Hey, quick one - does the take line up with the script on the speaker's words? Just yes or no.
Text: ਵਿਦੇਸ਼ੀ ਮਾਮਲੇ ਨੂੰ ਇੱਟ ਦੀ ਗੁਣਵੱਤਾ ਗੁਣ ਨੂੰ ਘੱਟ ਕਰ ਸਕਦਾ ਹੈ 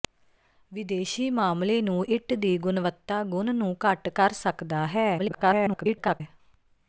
no